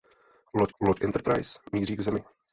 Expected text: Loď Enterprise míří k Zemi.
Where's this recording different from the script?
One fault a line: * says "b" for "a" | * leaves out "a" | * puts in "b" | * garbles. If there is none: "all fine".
* puts in "loď"